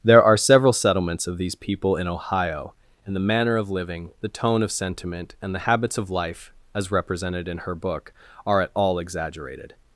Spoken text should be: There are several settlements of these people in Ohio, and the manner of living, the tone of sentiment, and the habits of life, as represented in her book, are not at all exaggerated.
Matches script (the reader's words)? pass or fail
fail